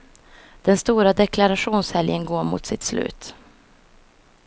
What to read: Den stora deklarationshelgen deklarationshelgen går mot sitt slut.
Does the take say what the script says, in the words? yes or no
no